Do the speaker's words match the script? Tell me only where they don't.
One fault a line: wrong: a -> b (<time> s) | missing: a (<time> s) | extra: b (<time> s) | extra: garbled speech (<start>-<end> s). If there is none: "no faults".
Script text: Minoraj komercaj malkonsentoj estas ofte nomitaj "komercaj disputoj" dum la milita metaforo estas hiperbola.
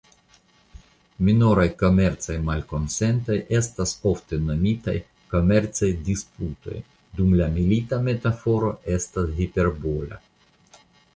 no faults